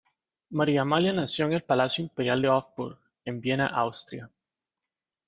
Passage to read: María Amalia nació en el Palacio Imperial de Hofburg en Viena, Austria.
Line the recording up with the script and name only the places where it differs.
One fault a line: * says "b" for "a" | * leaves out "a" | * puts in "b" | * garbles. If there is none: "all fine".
all fine